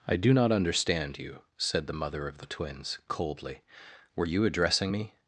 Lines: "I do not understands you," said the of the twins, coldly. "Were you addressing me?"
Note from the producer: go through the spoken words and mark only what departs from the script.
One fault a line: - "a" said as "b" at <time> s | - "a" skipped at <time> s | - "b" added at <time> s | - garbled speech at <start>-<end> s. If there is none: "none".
- "understands" said as "understand" at 0.5 s
- "mother" added at 1.9 s